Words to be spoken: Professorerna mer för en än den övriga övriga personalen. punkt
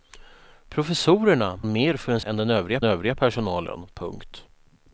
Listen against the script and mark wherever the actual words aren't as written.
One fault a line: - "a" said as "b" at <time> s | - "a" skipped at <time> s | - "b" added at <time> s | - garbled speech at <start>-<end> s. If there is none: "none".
none